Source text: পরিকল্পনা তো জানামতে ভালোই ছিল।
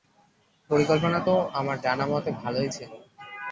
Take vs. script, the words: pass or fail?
fail